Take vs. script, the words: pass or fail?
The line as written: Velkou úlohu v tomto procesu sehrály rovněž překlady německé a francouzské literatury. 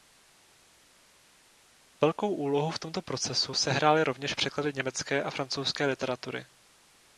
pass